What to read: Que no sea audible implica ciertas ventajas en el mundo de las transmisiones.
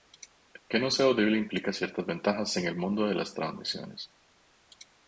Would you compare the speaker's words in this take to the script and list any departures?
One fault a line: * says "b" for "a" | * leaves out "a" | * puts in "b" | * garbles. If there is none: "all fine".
all fine